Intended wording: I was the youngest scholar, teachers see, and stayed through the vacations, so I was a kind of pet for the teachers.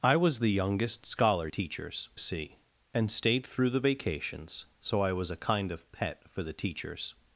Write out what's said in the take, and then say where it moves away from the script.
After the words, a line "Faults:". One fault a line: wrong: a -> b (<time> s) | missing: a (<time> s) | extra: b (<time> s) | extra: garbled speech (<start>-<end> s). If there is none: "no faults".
I was the youngest scholar, teachers see, and stayed through the vacations, so I was a kind of pet for the teachers.
Faults:
no faults